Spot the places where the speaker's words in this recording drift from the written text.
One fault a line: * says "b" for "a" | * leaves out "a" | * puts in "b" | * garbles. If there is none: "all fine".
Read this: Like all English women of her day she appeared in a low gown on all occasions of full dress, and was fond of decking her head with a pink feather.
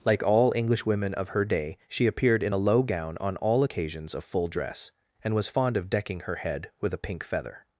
all fine